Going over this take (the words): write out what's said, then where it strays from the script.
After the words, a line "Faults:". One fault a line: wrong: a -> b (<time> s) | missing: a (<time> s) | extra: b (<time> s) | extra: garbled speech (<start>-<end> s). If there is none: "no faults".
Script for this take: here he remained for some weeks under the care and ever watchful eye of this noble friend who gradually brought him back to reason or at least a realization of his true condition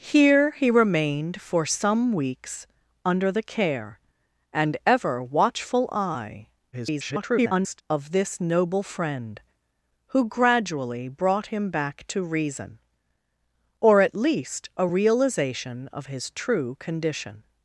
here he remained for some weeks under the care and ever watchful eye [garbled] of this noble friend who gradually brought him back to reason or at least a realization of his true condition
Faults:
extra: garbled speech (6.7-7.8 s)